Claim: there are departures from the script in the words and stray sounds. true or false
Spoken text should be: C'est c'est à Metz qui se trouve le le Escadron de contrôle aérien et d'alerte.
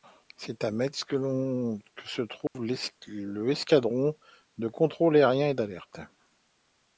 true